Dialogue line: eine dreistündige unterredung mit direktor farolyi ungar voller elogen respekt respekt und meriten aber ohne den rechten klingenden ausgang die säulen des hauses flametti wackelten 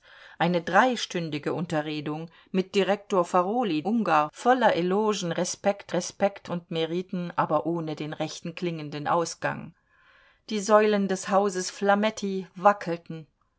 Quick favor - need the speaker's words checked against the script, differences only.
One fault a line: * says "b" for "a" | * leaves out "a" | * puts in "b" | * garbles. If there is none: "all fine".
all fine